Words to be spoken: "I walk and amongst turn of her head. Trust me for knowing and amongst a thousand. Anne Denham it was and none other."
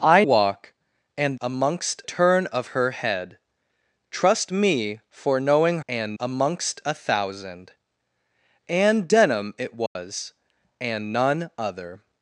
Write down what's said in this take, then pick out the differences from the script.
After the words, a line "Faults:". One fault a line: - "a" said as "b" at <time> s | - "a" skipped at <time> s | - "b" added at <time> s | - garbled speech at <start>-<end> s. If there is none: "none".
"I walk and amongst turn of her head. Trust me for knowing and amongst a thousand. Anne Denham it was and none other."
Faults:
none